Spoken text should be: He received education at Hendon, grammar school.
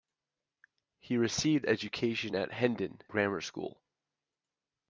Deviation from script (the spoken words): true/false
false